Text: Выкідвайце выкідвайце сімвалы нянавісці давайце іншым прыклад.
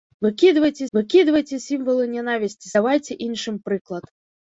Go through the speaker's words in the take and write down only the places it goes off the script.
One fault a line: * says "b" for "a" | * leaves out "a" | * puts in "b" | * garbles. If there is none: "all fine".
all fine